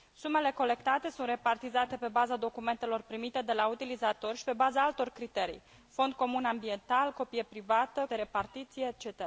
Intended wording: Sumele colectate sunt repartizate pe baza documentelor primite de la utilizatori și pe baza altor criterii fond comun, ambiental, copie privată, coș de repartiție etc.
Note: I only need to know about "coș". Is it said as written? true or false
false